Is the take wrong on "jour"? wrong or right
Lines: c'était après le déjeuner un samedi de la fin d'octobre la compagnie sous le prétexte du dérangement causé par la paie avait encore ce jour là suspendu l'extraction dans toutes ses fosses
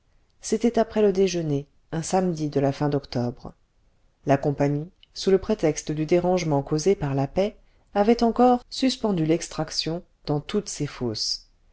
wrong